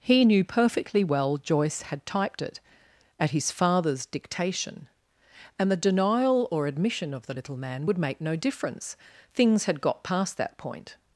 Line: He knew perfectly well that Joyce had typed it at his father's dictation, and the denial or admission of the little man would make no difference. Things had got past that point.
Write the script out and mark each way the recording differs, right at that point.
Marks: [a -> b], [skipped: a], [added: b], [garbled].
He knew perfectly well [skipped: that] Joyce had typed it at his father's dictation, and the denial or admission of the little man would make no difference. Things had got past that point.